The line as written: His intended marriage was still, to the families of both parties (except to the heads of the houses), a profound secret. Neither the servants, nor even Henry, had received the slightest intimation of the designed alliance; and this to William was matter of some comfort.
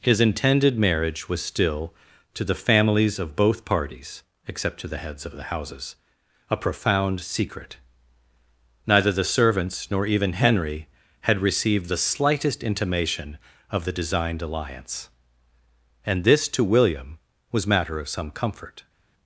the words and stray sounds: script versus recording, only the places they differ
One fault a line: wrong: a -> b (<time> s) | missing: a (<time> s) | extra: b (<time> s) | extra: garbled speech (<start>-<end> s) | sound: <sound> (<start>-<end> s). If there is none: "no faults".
no faults